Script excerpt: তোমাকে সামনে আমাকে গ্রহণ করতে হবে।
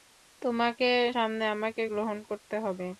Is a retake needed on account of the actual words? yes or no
no